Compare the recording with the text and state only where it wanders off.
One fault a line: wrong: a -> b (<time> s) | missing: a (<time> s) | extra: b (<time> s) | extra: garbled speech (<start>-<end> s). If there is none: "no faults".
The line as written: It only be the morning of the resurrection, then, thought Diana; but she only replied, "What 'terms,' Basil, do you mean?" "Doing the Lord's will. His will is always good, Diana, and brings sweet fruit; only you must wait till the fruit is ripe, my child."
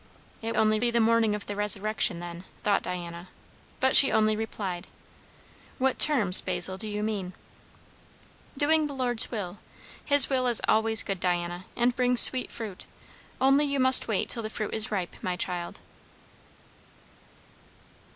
no faults